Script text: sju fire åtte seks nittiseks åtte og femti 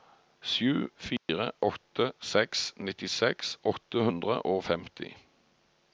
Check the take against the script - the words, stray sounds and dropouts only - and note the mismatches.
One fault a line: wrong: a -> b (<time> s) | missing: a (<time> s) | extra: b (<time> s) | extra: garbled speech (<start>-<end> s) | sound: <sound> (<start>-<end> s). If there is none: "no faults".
sound: dropout (1.2-1.3 s)
extra: hundre (4.0 s)